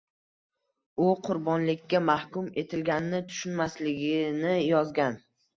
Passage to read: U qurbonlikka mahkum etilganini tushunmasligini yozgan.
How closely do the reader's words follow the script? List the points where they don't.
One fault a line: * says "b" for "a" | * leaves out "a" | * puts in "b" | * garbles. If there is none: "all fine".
all fine